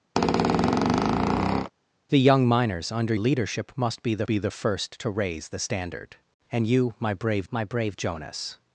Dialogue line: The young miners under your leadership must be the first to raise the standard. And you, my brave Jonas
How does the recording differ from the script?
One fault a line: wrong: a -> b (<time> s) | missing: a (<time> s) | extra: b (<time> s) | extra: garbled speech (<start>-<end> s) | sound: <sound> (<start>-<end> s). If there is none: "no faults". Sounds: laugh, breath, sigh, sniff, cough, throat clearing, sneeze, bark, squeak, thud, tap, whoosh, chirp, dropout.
sound: squeak (0.2-1.7 s)
missing: your (3.1 s)
extra: be the (4.2 s)
extra: my brave (7.5 s)